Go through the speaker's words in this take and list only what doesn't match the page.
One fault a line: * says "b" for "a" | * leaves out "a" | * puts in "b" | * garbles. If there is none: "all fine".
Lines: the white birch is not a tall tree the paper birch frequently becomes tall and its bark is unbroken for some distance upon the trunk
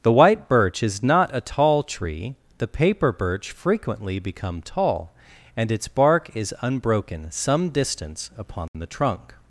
* says "become" for "becomes"
* leaves out "for"